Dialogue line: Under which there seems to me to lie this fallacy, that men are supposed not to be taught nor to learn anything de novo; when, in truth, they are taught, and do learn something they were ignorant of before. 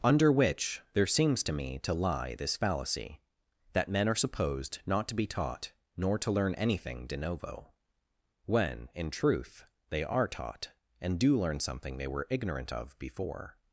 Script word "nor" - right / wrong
right